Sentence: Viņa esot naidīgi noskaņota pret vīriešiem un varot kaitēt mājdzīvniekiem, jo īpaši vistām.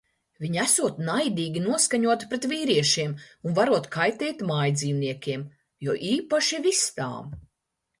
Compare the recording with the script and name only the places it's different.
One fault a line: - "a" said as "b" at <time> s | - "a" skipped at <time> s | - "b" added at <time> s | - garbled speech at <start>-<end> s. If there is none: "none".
none